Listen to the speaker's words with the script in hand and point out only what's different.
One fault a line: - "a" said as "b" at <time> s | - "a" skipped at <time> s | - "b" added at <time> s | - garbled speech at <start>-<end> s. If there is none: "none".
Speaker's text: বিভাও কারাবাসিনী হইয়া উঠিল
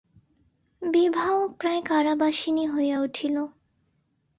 - "প্রায়" added at 1.6 s